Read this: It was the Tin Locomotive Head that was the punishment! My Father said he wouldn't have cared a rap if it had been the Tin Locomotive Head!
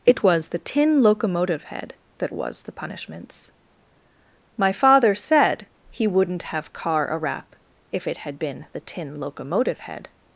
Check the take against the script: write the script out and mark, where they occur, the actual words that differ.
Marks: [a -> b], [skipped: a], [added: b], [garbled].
It was the Tin Locomotive Head that was the [punishment! -> punishments] My Father said he wouldn't have [cared -> car] a rap if it had been the Tin Locomotive Head!